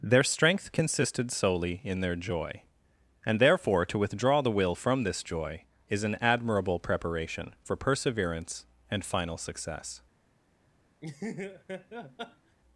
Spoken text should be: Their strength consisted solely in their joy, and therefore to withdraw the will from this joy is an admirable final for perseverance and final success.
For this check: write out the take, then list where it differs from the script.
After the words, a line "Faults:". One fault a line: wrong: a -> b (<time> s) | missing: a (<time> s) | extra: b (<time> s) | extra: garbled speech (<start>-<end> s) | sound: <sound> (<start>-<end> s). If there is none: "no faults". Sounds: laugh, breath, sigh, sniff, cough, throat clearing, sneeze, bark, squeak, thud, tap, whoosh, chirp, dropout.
Their strength consisted solely in their joy, and therefore to withdraw the will from this joy is an admirable preparation for perseverance and final success.
Faults:
wrong: final -> preparation (6.8 s)
sound: laugh (11.0-12.6 s)